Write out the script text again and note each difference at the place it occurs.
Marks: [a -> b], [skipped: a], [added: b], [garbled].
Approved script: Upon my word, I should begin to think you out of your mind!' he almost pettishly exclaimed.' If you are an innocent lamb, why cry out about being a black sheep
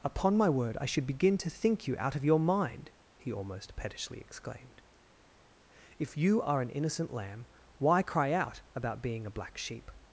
Upon my word, I should begin to think you out of your mind!' he almost pettishly exclaimed.' If you are an innocent lamb, why cry out about being a black sheep